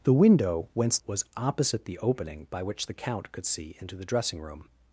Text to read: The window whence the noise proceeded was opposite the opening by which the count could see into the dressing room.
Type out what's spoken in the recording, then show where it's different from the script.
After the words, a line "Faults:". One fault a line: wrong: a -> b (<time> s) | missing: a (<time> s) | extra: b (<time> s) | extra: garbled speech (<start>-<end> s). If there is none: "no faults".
The window whence was opposite the opening by which the count could see into the dressing room.
Faults:
missing: the noise proceeded (1.0 s)